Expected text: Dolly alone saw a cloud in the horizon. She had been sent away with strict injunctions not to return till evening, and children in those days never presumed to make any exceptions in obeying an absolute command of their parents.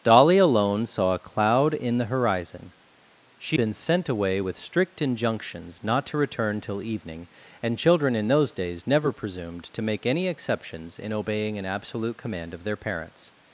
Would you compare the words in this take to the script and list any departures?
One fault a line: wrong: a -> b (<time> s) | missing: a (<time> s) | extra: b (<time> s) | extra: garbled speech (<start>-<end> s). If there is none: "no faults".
missing: had (3.6 s)